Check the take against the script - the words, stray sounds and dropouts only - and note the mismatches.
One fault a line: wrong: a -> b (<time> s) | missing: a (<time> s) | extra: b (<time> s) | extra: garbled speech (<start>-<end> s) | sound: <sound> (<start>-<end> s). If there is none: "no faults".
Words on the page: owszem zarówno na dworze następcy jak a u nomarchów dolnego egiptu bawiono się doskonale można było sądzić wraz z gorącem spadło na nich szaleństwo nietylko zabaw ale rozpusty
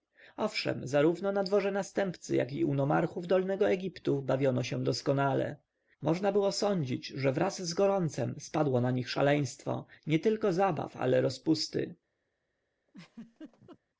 wrong: a -> i (2.5 s)
extra: że (7.1 s)
sound: laugh (12.9-13.8 s)